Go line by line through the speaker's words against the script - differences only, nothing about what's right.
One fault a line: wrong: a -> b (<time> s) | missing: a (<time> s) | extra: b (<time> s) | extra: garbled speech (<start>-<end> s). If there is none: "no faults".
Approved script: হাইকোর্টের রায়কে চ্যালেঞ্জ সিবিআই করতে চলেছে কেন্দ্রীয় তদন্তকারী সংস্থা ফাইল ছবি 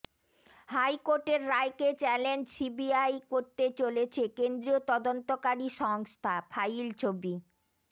no faults